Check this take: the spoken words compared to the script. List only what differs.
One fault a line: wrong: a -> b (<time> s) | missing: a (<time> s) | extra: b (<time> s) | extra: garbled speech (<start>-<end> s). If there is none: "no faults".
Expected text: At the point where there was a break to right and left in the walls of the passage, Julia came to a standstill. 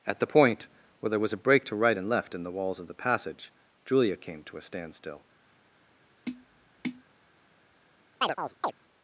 no faults